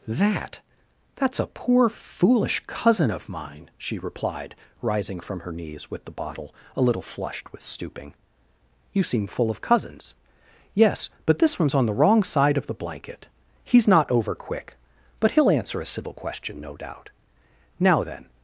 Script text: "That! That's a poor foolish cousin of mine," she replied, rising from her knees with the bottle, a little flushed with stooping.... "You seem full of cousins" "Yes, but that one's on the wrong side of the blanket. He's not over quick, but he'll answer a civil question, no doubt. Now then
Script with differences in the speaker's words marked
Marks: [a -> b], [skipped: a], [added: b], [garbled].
"That! That's a poor foolish cousin of mine," she replied, rising from her knees with the bottle, a little flushed with stooping.... "You seem full of cousins" "Yes, but [that -> this] one's on the wrong side of the blanket. He's not over quick, but he'll answer a civil question, no doubt. Now then